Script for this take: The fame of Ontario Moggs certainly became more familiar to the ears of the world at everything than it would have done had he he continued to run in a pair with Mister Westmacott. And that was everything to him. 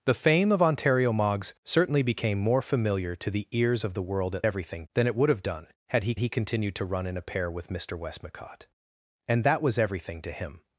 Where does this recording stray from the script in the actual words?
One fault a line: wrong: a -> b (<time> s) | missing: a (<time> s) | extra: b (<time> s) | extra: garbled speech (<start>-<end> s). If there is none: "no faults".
no faults